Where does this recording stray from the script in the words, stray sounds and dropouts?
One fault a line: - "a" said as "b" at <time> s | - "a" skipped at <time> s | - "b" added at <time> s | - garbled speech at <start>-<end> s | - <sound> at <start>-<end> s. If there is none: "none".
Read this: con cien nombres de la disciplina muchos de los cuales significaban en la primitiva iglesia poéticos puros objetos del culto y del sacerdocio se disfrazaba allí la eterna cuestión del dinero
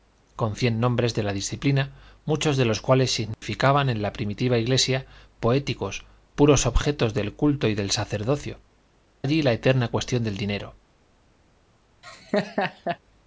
- dropout at 3.3-3.4 s
- "se disfrazaba" skipped at 8.6 s
- laugh at 12.0-13.0 s